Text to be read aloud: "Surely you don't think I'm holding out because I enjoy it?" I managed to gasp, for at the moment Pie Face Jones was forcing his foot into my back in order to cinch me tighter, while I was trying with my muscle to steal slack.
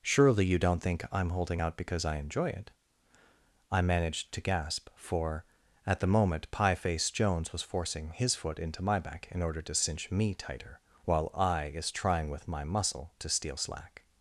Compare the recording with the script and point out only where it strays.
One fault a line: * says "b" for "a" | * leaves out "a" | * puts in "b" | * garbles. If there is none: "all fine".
* says "is" for "was"